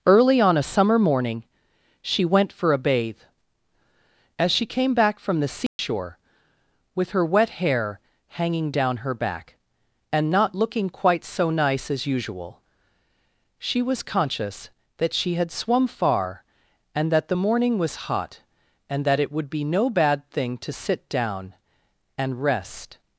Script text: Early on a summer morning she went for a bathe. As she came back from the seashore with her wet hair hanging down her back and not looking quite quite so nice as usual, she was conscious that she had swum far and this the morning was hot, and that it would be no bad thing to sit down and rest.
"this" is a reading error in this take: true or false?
true